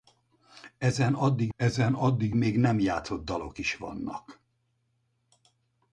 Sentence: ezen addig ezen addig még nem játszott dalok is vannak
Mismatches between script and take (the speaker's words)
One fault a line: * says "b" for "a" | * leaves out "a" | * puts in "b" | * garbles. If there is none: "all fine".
all fine